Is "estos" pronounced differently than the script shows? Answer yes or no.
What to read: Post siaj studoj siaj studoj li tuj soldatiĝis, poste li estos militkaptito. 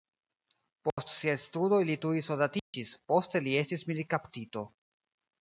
yes